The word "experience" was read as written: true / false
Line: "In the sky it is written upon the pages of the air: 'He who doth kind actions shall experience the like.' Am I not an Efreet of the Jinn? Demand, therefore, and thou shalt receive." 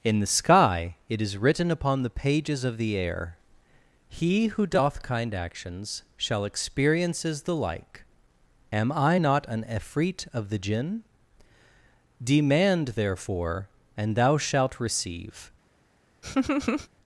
false